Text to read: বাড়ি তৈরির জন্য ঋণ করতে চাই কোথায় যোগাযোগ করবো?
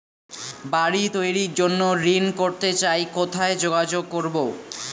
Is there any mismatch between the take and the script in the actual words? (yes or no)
no